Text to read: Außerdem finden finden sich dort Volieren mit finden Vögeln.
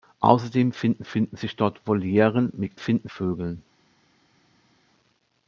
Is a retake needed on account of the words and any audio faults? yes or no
no